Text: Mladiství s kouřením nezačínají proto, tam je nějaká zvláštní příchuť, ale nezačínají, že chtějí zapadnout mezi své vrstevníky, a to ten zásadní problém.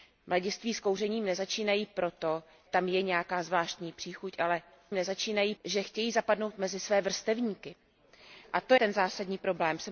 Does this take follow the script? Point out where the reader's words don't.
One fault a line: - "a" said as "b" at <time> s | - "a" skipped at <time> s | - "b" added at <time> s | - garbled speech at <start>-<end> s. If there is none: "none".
none